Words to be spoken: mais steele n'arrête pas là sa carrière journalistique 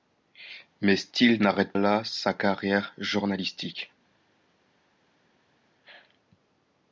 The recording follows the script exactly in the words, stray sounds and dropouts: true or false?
false